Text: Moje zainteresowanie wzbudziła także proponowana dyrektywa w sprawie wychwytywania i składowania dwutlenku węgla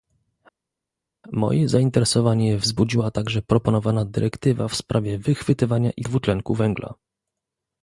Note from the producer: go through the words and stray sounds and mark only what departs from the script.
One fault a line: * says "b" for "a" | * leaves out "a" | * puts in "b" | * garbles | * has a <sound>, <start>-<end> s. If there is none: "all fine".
* leaves out "składowania"